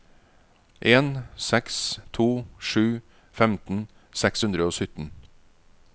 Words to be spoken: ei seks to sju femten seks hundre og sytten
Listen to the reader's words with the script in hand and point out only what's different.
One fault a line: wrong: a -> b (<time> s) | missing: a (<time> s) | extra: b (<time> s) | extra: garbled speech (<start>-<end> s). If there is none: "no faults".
wrong: ei -> en (0.8 s)